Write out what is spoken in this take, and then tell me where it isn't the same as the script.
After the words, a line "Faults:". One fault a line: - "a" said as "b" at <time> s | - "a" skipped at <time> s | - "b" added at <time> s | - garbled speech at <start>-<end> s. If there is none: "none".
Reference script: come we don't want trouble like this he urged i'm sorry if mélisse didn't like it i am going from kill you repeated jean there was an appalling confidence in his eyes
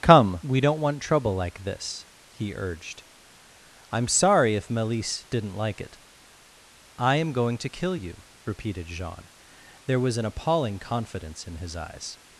come we don't want trouble like this he urged i'm sorry if mélisse didn't like it i am going to kill you repeated jean there was an appalling confidence in his eyes
Faults:
- "from" said as "to" at 7.6 s